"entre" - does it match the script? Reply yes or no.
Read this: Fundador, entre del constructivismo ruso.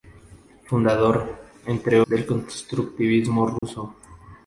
yes